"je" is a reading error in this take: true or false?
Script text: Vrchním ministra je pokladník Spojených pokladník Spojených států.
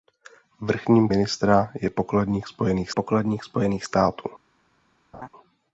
false